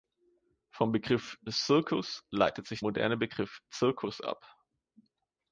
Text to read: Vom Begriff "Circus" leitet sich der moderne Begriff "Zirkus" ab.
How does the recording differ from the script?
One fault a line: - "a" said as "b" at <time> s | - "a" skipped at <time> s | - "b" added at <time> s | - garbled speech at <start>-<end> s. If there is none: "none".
- "der" skipped at 2.8 s